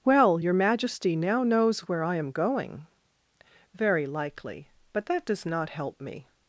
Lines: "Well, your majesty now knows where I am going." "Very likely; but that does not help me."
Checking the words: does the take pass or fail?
pass